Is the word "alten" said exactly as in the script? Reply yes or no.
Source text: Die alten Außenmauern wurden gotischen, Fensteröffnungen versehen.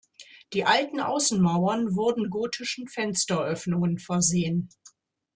yes